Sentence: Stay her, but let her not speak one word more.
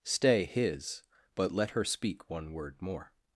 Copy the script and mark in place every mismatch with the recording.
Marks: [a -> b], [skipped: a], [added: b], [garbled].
Stay [her, -> his] but let her [skipped: not] speak one word more.